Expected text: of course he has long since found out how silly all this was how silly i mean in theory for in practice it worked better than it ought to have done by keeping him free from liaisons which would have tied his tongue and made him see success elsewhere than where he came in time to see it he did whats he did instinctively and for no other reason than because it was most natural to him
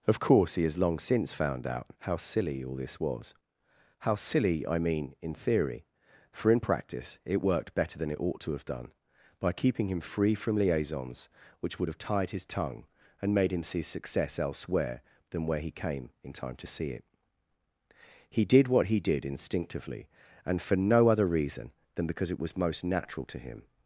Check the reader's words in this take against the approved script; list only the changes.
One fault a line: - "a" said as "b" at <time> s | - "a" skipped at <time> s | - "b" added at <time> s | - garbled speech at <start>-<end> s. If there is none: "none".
- "whats" said as "what" at 18.7 s